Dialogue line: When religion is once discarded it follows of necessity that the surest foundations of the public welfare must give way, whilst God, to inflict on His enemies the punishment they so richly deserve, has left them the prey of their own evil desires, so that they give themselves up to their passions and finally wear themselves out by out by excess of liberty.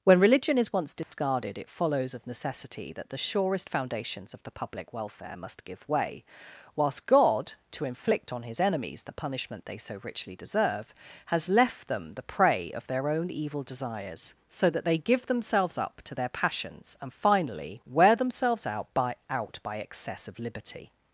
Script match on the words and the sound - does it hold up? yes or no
no